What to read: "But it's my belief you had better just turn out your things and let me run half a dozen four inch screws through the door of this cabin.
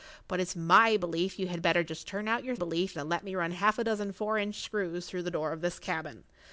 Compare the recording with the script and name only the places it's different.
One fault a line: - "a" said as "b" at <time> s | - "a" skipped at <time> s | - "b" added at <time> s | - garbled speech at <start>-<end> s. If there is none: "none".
- "things" said as "belief" at 2.6 s